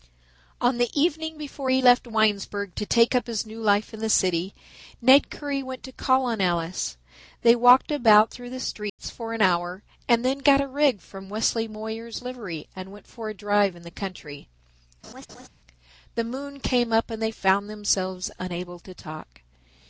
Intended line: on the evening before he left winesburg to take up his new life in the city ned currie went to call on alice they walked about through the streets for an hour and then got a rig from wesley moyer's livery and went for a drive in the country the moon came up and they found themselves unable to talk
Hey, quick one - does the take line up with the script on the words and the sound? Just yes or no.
no